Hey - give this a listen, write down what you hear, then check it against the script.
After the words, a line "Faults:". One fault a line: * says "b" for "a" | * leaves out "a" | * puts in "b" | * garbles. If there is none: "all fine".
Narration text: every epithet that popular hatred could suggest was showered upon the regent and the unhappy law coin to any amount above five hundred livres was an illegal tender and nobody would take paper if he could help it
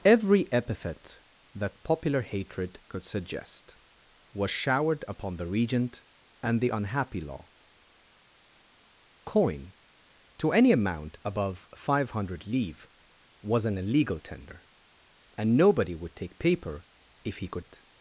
every epithet that popular hatred could suggest was showered upon the regent and the unhappy law coin to any amount above five hundred livres was an illegal tender and nobody would take paper if he could it
Faults:
* leaves out "help"